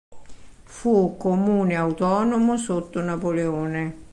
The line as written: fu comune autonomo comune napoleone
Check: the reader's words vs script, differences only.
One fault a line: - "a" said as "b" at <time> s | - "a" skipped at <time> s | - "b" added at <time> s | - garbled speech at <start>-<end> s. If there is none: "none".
- "comune" said as "sotto" at 2.6 s